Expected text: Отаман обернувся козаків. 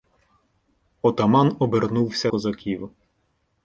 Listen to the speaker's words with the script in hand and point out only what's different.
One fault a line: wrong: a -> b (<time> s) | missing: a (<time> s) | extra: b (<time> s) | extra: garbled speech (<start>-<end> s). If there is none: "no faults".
no faults